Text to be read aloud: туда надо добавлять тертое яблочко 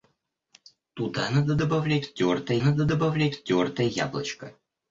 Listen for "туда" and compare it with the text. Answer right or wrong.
right